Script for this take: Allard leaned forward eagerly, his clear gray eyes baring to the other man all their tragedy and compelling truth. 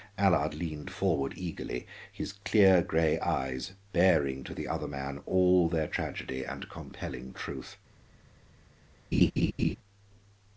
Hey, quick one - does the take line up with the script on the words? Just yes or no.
yes